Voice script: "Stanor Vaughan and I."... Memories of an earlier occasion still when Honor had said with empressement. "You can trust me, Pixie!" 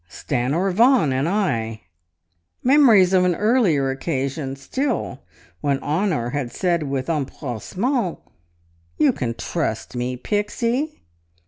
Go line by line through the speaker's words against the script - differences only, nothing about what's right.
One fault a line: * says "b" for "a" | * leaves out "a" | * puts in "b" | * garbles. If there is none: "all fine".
all fine